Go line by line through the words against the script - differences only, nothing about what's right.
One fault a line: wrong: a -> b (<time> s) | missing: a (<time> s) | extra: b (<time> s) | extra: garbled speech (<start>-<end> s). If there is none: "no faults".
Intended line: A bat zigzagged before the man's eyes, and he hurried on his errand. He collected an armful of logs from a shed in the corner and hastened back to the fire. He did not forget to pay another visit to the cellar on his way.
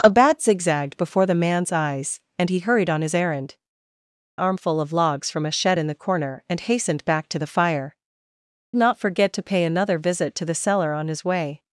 missing: He collected an (3.5 s)
missing: He did (7.9 s)